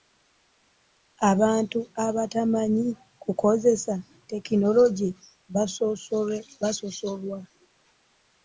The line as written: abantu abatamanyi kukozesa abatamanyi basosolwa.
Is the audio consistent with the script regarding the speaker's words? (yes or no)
no